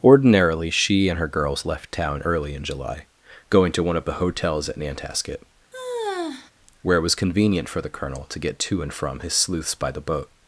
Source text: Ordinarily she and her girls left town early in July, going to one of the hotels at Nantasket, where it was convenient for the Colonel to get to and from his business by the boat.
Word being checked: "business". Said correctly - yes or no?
no